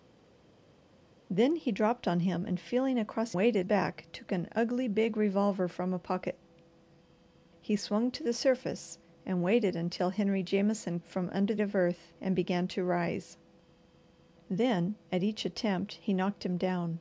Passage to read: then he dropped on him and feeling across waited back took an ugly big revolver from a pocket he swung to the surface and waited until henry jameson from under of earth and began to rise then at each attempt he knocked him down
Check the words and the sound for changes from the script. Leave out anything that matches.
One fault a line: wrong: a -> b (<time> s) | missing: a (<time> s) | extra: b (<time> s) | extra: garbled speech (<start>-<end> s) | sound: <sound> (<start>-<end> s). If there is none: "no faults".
no faults